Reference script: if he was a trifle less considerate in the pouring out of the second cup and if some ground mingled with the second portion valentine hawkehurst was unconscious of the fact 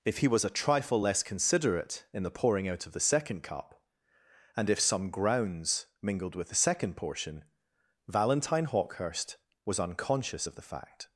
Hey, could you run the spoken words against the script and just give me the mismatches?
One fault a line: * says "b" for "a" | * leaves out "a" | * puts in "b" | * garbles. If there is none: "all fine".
* says "grounds" for "ground"